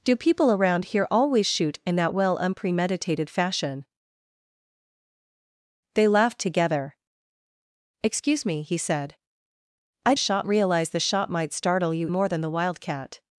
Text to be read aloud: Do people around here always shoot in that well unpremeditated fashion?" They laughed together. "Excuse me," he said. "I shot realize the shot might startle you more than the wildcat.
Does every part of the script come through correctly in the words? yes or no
yes